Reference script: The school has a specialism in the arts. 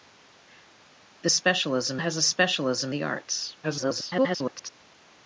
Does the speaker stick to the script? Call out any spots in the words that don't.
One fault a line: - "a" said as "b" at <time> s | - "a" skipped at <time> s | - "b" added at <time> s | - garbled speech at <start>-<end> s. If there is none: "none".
- "school" said as "specialism" at 1.3 s
- "in" skipped at 2.9 s
- garbled speech at 3.6-4.7 s